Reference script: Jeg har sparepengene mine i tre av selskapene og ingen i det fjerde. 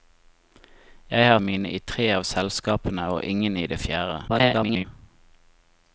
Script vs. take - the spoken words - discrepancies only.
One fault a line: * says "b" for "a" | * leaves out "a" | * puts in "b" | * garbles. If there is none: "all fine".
* leaves out "sparepengene"
* garbles